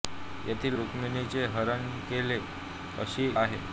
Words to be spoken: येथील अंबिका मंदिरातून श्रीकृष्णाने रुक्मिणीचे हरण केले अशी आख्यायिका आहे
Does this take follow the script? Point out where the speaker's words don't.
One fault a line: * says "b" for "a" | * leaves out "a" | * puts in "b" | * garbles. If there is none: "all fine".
* leaves out "अंबिका मंदिरातून श्रीकृष्णाने"
* leaves out "आख्यायिका"